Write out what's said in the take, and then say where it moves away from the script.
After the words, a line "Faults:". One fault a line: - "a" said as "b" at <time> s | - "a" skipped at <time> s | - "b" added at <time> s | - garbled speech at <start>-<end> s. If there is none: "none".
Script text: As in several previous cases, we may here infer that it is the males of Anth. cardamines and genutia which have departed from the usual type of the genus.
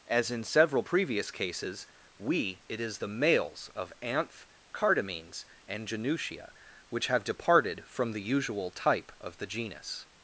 As in several previous cases, we it is the males of Anth. cardamines and genutia which have departed from the usual type of the genus.
Faults:
- "may here infer that" skipped at 2.6 s